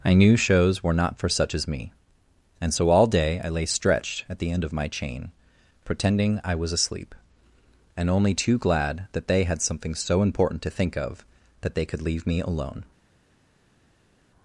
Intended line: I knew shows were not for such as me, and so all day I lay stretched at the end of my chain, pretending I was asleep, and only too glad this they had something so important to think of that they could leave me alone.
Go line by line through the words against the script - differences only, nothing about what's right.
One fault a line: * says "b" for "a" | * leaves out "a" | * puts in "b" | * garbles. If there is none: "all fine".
* says "that" for "this"